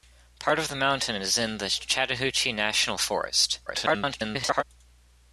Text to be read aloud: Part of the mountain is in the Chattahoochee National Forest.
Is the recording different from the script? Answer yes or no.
yes